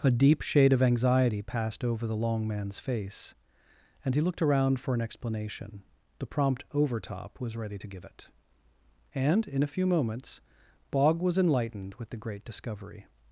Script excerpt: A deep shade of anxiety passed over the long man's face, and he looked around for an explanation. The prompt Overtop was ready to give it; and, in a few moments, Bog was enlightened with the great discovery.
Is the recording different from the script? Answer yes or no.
no